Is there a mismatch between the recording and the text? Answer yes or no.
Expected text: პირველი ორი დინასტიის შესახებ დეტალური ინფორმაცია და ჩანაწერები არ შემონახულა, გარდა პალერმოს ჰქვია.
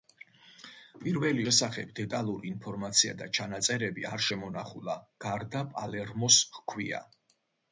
yes